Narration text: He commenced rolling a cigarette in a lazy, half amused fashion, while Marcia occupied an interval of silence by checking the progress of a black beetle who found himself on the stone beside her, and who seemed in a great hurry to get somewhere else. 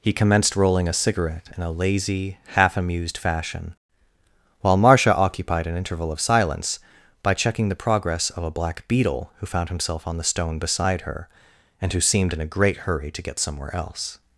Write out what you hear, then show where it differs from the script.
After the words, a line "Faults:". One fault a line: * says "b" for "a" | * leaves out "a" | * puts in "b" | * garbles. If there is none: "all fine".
He commenced rolling a cigarette in a lazy, half amused fashion, while Marcia occupied an interval of silence by checking the progress of a black beetle who found himself on the stone beside her, and who seemed in a great hurry to get somewhere else.
Faults:
all fine